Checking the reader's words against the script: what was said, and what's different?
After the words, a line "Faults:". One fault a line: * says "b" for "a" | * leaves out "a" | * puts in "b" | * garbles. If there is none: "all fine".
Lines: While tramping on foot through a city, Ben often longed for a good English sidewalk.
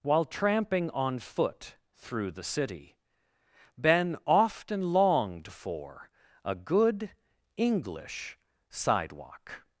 While tramping on foot through the city, Ben often longed for a good English sidewalk.
Faults:
* says "the" for "a"